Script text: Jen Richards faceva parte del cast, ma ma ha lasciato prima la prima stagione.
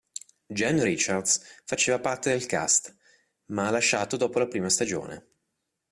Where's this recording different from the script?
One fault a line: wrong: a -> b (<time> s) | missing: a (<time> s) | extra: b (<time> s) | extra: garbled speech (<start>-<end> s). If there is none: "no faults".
missing: ma (3.7 s)
wrong: prima -> dopo (4.2 s)